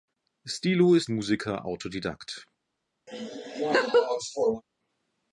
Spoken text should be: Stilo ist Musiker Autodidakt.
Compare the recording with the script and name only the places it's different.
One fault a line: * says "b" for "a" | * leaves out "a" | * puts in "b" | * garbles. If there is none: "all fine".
all fine